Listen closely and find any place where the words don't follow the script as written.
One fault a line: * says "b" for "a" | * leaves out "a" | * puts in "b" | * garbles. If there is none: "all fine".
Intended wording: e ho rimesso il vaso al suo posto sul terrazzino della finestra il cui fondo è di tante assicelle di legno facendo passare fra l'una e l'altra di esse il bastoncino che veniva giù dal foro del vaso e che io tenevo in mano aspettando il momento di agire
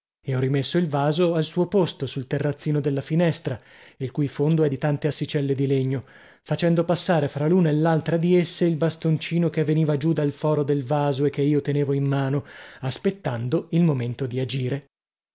all fine